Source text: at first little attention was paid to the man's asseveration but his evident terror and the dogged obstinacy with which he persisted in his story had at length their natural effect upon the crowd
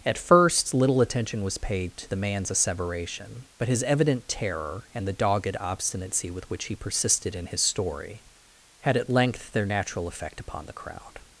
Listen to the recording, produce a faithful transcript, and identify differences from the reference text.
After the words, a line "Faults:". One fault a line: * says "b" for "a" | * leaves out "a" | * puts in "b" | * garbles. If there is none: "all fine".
at first little attention was paid to the man's asseveration but his evident terror and the dogged obstinacy with which he persisted in his story had at length their natural effect upon the crowd
Faults:
all fine